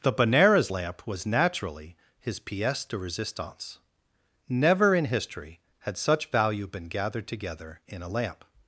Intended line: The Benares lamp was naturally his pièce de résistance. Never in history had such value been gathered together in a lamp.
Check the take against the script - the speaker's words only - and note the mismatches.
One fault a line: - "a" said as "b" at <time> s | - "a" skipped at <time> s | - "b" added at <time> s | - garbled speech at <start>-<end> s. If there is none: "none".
none